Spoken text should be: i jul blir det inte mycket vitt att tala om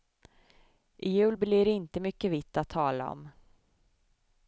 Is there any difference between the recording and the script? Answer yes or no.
no